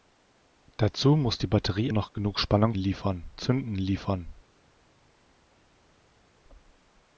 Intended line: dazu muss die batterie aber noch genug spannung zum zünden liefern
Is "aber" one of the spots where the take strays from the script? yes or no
yes